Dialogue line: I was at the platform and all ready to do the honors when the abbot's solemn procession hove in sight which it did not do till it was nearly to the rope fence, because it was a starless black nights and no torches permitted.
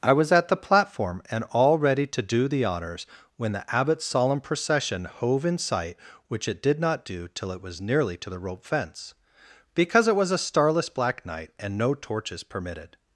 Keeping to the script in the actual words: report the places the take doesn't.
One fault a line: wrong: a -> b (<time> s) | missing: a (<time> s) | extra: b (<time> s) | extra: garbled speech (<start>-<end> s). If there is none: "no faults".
wrong: nights -> night (11.2 s)